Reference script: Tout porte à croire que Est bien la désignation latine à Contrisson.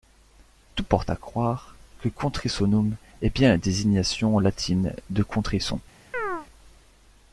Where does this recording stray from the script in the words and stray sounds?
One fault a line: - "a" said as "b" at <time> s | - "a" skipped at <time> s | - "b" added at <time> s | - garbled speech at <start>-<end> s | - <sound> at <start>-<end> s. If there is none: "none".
- "Contrissonum" added at 2.1 s
- "à" said as "de" at 5.1 s
- chirp at 6.1-6.5 s